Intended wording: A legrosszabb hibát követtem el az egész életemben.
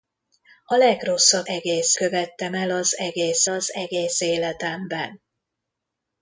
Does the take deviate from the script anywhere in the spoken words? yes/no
yes